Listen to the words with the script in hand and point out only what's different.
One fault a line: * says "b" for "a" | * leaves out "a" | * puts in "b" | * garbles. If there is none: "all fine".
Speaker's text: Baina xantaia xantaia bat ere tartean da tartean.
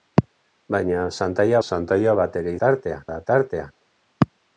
all fine